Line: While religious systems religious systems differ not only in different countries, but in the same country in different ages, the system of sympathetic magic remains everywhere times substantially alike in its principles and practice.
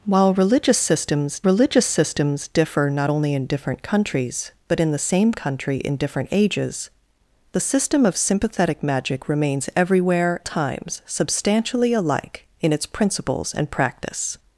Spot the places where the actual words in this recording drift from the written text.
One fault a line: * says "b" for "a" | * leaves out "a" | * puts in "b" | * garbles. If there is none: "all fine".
all fine